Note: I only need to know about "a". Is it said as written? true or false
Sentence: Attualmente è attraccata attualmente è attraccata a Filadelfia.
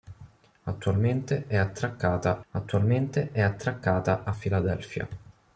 true